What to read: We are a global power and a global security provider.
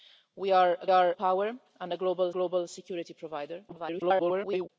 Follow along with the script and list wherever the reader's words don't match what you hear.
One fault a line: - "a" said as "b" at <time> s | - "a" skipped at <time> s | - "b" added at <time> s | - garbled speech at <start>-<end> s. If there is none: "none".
- "global" said as "are" at 0.9 s
- "global" added at 2.3 s
- garbled speech at 3.7-4.7 s